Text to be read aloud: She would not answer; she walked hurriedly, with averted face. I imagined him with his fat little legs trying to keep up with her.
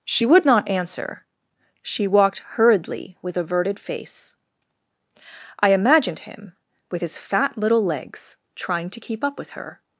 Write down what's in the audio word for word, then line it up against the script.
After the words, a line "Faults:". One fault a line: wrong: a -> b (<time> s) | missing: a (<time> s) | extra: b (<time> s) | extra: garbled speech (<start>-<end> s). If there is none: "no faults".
She would not answer; she walked hurriedly, with averted face. I imagined him with his fat little legs trying to keep up with her.
Faults:
no faults